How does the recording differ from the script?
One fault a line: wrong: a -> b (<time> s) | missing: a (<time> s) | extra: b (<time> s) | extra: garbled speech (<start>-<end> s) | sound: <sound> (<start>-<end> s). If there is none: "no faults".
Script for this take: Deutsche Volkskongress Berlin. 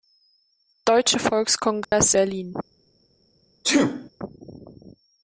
sound: dropout (1.8-1.9 s)
sound: sneeze (3.6-4.1 s)